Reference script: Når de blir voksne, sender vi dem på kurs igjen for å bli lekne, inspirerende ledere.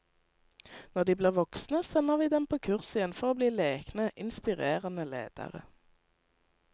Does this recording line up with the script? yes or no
yes